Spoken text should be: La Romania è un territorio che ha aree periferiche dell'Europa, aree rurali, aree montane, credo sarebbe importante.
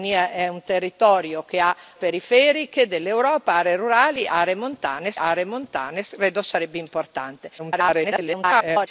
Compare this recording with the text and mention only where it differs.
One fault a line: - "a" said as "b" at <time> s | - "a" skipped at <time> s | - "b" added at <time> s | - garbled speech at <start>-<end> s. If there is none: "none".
- "aree" skipped at 1.8 s
- "aree montane" added at 5.2 s
- garbled speech at 7.6-8.9 s